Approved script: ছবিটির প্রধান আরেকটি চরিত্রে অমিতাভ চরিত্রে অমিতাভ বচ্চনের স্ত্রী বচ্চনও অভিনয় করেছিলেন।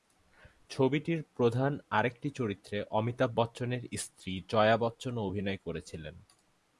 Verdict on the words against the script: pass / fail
fail